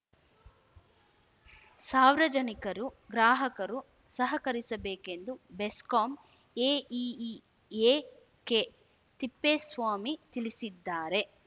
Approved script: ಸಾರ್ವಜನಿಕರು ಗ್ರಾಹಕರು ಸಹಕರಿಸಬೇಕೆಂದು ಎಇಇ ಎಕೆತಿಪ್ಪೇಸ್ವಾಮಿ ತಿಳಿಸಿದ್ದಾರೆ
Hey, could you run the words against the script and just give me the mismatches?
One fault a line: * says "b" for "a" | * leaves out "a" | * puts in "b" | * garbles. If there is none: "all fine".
* puts in "ಬೆಸ್ಕಾಂ"